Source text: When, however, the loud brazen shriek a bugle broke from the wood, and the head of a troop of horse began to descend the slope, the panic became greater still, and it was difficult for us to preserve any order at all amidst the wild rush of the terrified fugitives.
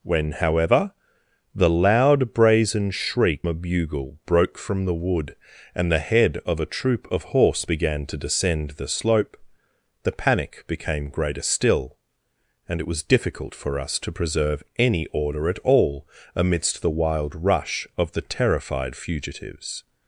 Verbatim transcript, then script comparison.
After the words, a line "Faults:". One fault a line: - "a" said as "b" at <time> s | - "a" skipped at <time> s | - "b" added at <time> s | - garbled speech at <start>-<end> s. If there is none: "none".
When, however, the loud brazen shriek a bugle broke from the wood, and the head of a troop of horse began to descend the slope, the panic became greater still, and it was difficult for us to preserve any order at all amidst the wild rush of the terrified fugitives.
Faults:
none